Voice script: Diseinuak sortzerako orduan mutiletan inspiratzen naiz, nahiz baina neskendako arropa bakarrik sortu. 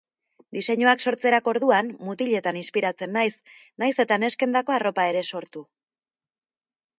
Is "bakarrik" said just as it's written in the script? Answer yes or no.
no